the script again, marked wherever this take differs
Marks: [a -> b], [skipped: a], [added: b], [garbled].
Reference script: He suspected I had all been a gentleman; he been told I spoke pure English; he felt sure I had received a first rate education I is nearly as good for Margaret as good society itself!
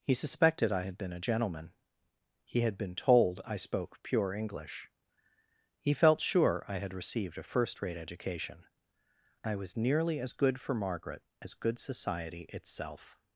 He suspected I had [skipped: all] been a gentleman; he [added: had] been told I spoke pure English; he felt sure I had received a first rate education I [is -> was] nearly as good for Margaret as good society itself!